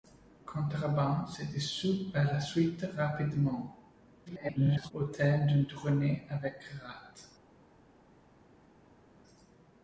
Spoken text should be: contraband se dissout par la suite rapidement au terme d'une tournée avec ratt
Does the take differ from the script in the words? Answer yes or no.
yes